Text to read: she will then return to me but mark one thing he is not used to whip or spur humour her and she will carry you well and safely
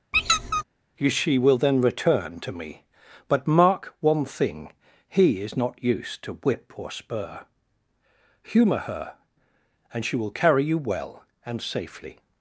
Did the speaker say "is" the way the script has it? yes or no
yes